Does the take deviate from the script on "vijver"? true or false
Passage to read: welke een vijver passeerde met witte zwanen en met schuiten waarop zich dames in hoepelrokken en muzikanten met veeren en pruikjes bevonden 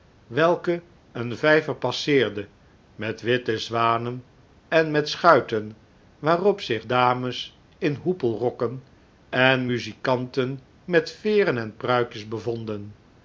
false